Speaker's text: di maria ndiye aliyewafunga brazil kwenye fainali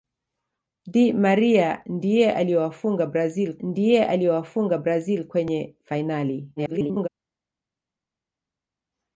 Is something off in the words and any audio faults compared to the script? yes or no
yes